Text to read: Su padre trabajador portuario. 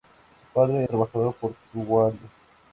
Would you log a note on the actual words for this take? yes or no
no